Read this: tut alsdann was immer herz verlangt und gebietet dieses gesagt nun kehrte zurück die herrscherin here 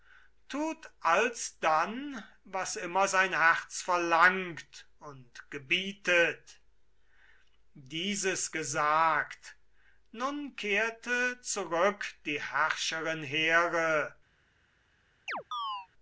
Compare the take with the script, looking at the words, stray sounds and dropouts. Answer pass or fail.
fail